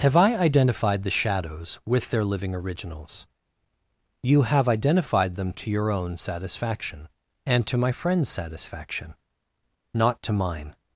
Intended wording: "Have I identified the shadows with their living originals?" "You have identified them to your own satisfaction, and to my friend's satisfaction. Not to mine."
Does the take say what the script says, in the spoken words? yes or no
yes